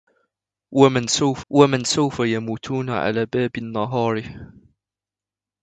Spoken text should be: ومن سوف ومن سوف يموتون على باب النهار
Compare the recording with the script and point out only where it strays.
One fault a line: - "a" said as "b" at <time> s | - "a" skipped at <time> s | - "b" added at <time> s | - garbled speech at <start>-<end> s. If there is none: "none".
none